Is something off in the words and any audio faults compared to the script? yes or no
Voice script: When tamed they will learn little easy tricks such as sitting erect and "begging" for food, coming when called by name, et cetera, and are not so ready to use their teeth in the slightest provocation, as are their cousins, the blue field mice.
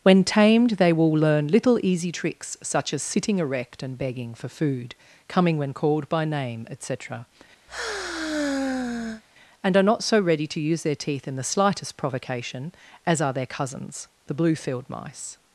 yes